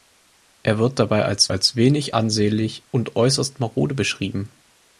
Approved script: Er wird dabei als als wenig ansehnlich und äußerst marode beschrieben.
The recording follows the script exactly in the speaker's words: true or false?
true